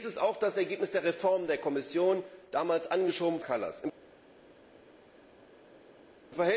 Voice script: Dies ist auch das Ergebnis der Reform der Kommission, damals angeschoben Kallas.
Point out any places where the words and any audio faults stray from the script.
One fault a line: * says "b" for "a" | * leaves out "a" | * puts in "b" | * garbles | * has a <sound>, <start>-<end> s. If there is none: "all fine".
all fine